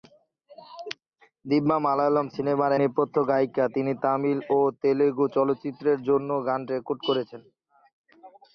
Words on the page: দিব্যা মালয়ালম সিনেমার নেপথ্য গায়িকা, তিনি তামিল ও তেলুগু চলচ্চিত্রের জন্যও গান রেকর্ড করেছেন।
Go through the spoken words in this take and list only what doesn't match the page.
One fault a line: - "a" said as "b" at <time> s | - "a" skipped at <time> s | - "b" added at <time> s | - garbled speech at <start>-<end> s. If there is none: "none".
none